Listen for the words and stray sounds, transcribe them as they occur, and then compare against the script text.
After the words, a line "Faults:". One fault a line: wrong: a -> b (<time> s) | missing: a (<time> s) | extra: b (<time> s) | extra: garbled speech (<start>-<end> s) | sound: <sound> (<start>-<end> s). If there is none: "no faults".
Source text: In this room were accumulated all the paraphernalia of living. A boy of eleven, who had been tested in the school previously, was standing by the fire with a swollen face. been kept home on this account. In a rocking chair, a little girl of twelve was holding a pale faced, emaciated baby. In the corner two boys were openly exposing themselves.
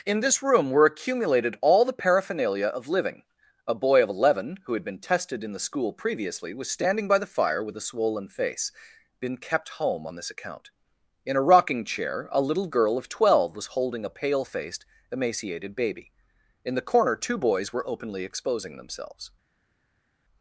In this room were accumulated all the paraphernalia of living. A boy of eleven, who had been tested in the school previously, was standing by the fire with a swollen face. been kept home on this account. In a rocking chair, a little girl of twelve was holding a pale faced, emaciated baby. In the corner two boys were openly exposing themselves.
Faults:
no faults